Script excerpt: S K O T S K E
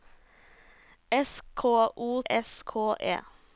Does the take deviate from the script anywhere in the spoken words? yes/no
yes